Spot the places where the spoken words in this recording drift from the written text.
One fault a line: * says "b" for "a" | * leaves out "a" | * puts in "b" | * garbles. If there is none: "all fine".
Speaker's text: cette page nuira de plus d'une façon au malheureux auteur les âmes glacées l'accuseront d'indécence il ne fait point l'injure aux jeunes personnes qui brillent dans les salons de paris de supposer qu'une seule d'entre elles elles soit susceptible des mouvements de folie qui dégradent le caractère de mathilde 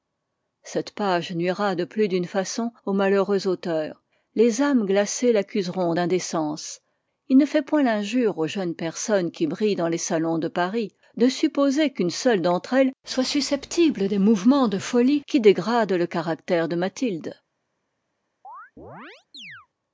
* leaves out "elles"